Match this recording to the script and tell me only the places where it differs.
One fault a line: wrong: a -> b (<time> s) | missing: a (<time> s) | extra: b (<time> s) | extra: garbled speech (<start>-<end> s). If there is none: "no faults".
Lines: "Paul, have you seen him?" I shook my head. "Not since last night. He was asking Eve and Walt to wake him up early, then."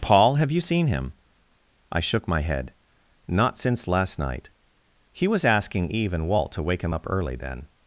no faults